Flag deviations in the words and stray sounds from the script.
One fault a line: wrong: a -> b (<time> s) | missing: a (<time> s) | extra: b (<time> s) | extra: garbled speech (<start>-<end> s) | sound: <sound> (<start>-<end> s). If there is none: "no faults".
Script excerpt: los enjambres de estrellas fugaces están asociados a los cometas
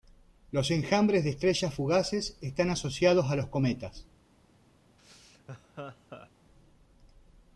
sound: laugh (5.0-6.3 s)